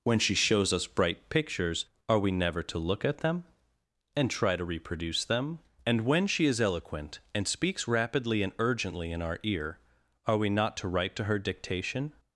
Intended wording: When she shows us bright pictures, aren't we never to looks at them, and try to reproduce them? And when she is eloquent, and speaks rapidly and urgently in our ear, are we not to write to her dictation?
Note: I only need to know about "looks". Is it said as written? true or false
false